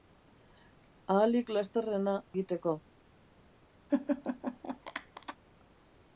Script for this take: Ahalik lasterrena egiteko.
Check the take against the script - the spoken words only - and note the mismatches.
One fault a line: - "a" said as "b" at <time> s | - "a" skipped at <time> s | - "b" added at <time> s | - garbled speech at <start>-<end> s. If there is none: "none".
none